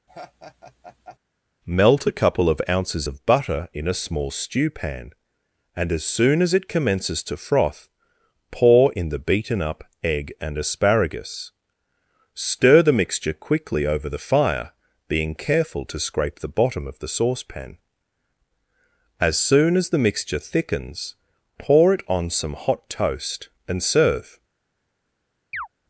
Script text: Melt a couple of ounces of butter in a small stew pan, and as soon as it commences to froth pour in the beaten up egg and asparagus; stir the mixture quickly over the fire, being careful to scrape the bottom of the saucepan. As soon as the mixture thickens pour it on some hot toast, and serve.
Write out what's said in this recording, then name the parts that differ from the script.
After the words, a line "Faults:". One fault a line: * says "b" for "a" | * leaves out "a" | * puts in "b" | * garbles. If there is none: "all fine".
Melt a couple of ounces of butter in a small stew pan, and as soon as it commences to froth pour in the beaten up egg and asparagus; stir the mixture quickly over the fire, being careful to scrape the bottom of the saucepan. As soon as the mixture thickens pour it on some hot toast, and serve.
Faults:
all fine